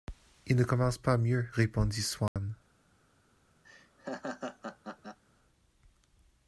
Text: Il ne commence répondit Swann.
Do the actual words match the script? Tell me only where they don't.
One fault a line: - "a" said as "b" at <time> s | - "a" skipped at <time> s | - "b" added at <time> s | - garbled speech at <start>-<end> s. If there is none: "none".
- "pas mieux" added at 1.0 s